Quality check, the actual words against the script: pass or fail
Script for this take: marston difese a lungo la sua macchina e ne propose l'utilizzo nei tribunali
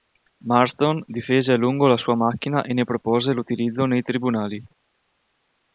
pass